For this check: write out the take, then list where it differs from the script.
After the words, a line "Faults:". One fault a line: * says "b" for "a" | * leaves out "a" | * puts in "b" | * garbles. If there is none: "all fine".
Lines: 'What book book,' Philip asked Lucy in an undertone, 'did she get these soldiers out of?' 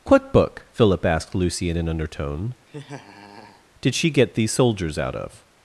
'What book,' Philip asked Lucy in an undertone, 'did she get these soldiers out of?'
Faults:
* leaves out "book"